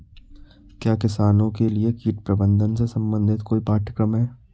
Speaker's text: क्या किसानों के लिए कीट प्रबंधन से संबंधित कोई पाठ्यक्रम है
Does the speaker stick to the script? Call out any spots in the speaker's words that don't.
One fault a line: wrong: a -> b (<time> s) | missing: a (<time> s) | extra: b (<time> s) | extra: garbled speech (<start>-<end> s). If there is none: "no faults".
no faults